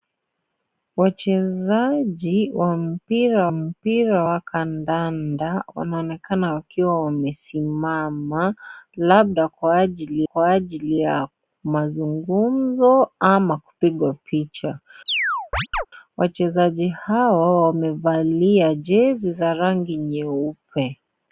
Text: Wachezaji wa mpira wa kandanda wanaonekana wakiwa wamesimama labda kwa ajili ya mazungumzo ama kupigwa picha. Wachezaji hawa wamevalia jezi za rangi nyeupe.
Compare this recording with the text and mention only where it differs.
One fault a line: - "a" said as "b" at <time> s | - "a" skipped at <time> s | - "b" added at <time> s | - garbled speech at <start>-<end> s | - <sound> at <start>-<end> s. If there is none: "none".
- "mpira" added at 3.5 s
- "kwa ajili" added at 10.2 s
- chirp at 15.1-15.9 s